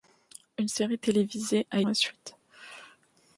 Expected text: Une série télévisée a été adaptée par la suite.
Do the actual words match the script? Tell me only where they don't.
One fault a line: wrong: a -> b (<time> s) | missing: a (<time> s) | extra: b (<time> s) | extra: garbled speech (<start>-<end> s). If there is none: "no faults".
missing: été adaptée par (1.8 s)